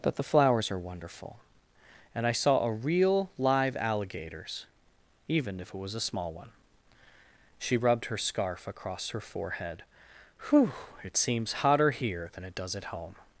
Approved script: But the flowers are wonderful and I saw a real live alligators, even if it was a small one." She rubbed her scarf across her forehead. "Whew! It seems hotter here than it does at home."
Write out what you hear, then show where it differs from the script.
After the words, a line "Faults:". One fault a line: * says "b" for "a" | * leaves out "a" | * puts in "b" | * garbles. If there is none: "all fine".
But the flowers are wonderful and I saw a real live alligators, even if it was a small one." She rubbed her scarf across her forehead. "Whew! It seems hotter here than it does at home."
Faults:
all fine